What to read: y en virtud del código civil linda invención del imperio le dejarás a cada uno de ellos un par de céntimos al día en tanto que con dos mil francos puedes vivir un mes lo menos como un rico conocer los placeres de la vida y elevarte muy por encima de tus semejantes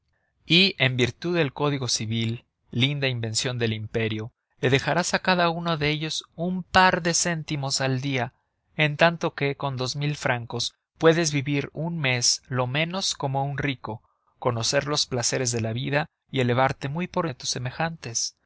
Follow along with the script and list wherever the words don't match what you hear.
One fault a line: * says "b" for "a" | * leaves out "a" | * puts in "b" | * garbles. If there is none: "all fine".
* leaves out "encima"